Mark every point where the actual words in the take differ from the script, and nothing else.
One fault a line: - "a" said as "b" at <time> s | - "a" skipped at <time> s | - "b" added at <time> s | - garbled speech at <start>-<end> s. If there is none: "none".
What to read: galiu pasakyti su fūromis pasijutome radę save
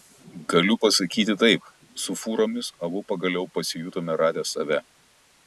- "taip" added at 1.4 s
- "abu pagaliau" added at 2.9 s